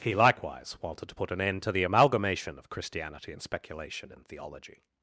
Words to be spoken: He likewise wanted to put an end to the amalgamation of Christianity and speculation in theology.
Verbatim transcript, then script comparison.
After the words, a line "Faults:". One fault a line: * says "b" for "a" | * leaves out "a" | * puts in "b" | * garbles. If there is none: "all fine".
He likewise wanted to put an end to the amalgamation of Christianity and speculation in theology.
Faults:
all fine